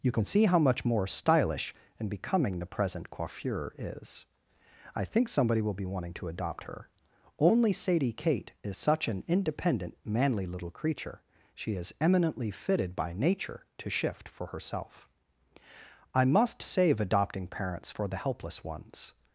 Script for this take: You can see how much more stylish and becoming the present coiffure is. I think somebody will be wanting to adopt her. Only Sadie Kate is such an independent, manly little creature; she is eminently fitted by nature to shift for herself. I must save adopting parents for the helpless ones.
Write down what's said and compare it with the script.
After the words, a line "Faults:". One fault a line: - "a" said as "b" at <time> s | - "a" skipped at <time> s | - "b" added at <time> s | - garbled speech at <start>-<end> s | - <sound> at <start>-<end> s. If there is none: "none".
You can see how much more stylish and becoming the present coiffure is. I think somebody will be wanting to adopt her. Only Sadie Kate is such an independent, manly little creature; she is eminently fitted by nature to shift for herself. I must save adopting parents for the helpless ones.
Faults:
none